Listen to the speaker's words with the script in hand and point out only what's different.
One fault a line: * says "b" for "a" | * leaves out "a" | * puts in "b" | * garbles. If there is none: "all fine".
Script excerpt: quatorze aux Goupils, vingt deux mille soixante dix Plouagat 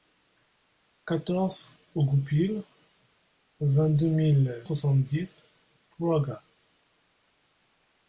all fine